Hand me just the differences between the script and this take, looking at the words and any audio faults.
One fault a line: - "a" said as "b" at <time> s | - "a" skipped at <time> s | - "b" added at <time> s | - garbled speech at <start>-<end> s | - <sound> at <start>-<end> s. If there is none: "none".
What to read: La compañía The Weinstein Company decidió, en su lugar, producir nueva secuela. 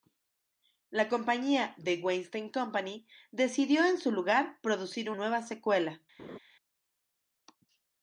- laugh at 6.2-6.4 s